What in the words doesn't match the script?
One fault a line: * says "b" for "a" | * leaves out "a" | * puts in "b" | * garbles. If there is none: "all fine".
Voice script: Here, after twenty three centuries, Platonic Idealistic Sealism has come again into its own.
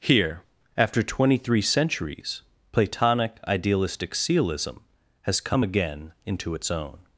all fine